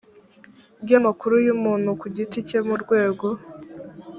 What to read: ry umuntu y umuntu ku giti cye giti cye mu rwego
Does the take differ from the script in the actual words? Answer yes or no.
yes